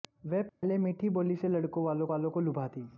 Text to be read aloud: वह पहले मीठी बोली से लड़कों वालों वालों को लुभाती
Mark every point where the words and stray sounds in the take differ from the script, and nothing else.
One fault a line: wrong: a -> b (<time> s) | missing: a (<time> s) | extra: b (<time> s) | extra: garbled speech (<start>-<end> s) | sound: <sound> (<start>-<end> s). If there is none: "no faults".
sound: dropout (0.5-0.6 s)